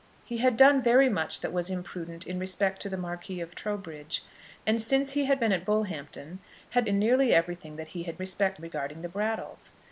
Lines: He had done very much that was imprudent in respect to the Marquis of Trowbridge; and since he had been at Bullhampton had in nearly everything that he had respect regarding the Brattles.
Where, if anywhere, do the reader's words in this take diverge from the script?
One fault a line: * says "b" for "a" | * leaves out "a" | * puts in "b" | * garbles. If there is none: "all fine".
all fine